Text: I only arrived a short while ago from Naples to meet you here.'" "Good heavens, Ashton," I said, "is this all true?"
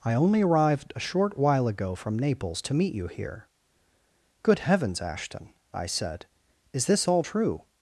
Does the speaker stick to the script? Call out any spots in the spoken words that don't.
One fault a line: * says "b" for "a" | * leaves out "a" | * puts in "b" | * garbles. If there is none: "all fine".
all fine